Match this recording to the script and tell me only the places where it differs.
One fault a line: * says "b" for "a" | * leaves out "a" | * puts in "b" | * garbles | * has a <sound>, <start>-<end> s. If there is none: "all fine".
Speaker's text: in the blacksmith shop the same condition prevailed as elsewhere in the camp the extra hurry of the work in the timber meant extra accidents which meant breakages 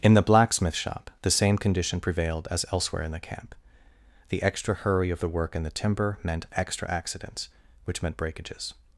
all fine